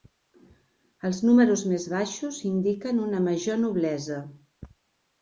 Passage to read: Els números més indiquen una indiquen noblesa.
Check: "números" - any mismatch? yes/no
no